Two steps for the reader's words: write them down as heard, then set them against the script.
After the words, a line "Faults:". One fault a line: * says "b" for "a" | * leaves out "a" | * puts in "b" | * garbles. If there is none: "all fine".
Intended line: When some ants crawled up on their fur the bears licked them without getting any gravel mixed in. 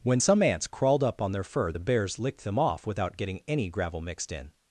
When some ants crawled up on their fur the bears licked them off without getting any gravel mixed in.
Faults:
* puts in "off"